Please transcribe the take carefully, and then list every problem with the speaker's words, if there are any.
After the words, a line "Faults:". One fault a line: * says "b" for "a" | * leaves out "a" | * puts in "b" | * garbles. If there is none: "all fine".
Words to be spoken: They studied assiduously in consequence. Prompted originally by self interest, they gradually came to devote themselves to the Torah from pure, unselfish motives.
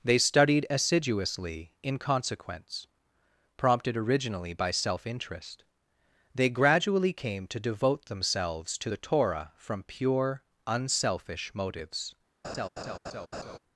They studied assiduously in consequence. Prompted originally by self interest, they gradually came to devote themselves to the Torah from pure, unselfish motives.
Faults:
all fine